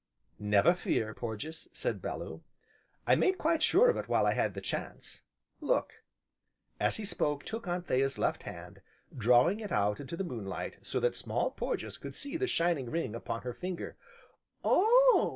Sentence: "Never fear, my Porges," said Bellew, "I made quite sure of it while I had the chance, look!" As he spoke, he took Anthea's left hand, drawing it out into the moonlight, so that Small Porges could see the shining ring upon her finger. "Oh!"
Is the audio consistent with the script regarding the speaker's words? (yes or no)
no